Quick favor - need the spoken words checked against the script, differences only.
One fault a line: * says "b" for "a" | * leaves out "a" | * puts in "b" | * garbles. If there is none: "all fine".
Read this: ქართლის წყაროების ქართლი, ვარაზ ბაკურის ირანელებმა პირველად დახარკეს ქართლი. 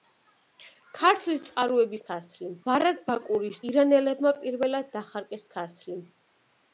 all fine